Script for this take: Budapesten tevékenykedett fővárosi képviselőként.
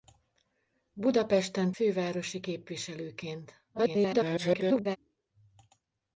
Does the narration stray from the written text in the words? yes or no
yes